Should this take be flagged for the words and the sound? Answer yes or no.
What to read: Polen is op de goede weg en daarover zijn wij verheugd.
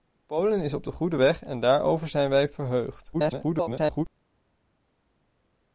yes